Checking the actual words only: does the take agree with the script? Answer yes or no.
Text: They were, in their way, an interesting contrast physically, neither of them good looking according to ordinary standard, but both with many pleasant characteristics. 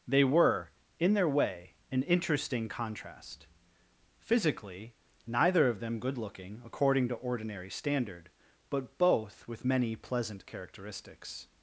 yes